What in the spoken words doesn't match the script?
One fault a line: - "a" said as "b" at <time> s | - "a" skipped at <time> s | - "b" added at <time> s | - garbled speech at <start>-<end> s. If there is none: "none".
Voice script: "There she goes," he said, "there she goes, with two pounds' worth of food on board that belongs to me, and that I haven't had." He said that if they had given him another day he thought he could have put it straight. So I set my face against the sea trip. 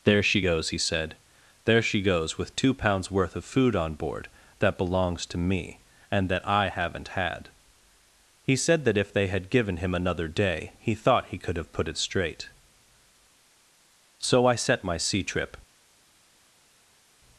- "face against the" skipped at 15.0 s